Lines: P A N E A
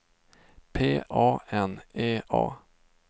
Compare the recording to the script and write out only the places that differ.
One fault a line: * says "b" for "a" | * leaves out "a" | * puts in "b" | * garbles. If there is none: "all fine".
all fine